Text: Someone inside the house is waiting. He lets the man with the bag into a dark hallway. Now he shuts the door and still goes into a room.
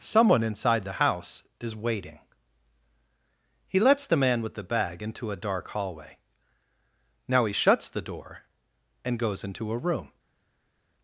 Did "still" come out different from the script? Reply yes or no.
yes